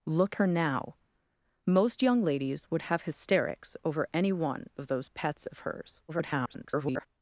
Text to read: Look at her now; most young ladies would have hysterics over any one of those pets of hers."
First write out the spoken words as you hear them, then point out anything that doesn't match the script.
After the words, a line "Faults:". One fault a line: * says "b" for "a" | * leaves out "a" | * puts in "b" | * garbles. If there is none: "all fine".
Look her now; most young ladies would have hysterics over any one of those pets of hers." [garbled]
Faults:
* leaves out "at"
* garbles